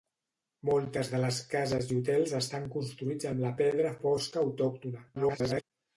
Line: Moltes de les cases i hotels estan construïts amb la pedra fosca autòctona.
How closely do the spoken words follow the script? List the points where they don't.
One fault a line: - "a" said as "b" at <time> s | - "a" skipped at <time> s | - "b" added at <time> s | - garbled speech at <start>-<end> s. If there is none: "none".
- garbled speech at 5.1-5.6 s